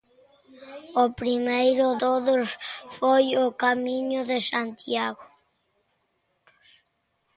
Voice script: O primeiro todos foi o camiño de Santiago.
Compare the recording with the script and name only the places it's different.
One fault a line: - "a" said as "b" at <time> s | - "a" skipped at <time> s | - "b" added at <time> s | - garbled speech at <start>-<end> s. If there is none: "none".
none